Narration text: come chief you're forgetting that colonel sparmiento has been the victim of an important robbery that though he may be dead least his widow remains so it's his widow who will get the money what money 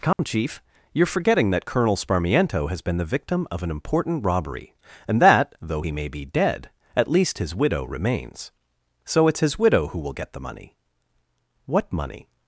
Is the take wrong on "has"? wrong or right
right